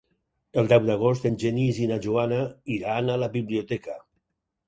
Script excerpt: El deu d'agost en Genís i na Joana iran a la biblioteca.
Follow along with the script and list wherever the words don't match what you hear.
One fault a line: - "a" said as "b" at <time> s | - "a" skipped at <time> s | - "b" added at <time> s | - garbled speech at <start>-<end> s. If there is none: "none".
none